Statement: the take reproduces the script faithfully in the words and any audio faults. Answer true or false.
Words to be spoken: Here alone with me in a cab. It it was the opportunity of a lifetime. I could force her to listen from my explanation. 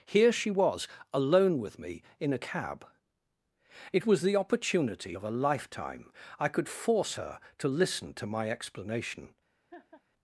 false